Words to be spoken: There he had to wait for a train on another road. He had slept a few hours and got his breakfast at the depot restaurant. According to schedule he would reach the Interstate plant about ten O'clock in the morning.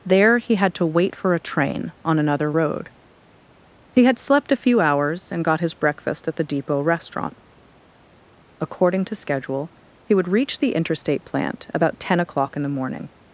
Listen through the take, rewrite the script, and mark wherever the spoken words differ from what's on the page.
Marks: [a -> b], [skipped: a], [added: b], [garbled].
There he had to wait for a train on another road. He had slept a few hours and got his breakfast at the depot restaurant. According to schedule he would reach the Interstate plant about ten O'clock in the morning.